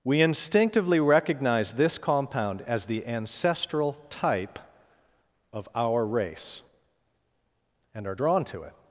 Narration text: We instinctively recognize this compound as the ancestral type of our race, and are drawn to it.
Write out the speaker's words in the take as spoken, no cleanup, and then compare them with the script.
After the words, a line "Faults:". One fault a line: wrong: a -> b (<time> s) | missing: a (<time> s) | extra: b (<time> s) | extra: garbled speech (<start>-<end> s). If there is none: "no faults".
We instinctively recognize this compound as the ancestral type of our race, and are drawn to it.
Faults:
no faults